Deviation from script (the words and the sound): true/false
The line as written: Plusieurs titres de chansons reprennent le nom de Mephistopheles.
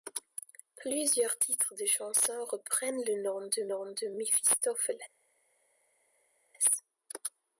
true